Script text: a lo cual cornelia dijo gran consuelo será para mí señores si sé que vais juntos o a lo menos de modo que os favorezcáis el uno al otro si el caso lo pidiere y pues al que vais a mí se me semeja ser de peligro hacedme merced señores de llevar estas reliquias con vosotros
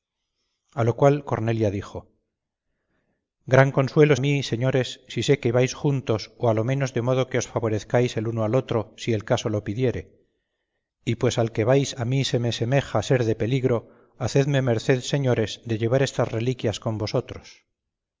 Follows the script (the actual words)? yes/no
no